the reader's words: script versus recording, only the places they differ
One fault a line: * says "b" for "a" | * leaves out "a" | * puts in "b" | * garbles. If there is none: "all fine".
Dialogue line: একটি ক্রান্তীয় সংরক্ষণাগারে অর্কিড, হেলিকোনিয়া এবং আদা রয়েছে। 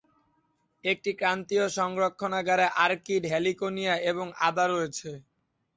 all fine